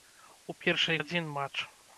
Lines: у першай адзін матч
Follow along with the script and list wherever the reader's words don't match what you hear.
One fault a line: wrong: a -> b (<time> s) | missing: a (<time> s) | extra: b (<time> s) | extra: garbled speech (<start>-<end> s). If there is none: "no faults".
no faults